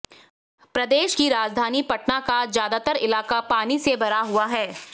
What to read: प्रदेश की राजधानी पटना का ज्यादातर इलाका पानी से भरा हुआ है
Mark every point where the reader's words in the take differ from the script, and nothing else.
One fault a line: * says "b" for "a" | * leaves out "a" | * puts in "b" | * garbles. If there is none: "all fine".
all fine